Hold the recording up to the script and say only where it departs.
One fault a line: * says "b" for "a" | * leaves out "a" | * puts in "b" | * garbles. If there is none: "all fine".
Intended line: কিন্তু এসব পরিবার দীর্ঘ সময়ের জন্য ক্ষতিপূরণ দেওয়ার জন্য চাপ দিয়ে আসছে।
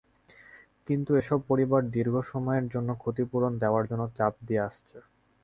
all fine